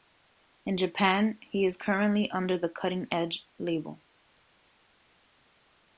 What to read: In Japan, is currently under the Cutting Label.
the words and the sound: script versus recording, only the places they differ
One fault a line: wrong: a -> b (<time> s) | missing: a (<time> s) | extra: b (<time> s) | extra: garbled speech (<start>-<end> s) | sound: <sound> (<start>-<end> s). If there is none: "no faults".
extra: he (1.4 s)
extra: Edge (3.1 s)